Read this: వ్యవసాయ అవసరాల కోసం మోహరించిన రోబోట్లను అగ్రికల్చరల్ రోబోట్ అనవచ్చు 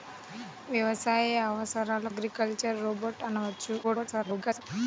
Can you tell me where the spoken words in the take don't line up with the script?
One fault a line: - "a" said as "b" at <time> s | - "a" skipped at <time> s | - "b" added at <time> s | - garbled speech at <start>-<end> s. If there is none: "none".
- "కోసం మోహరించిన రోబోట్లను" skipped at 2.1 s
- garbled speech at 3.8-4.6 s